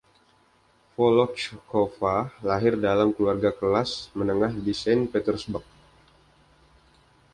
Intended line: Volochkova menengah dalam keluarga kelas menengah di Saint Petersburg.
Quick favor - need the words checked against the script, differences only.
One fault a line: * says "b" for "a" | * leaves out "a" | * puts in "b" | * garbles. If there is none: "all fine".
* says "lahir" for "menengah"